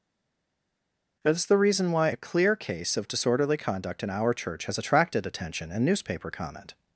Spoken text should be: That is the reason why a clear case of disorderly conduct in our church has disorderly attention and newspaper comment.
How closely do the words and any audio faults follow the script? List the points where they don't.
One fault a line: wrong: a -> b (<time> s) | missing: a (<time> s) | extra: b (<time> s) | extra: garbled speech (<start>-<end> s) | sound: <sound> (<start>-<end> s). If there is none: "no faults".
wrong: disorderly -> attracted (4.8 s)